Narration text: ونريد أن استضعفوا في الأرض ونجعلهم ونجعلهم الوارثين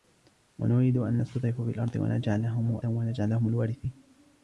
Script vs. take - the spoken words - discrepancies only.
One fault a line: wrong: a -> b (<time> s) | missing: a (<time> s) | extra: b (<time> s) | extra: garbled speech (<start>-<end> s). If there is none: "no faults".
no faults